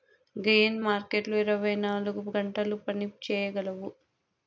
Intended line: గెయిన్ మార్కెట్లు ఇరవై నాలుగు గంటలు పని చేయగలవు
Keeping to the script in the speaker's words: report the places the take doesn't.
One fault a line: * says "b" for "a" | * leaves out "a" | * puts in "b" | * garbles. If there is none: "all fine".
all fine